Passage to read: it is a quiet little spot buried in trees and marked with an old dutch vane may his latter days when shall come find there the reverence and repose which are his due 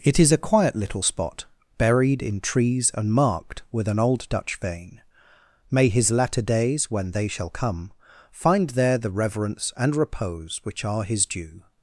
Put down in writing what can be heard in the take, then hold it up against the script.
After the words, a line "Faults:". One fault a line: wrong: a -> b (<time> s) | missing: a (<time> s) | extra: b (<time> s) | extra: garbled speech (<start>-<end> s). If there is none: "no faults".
it is a quiet little spot buried in trees and marked with an old dutch vane may his latter days when they shall come find there the reverence and repose which are his due
Faults:
extra: they (7.1 s)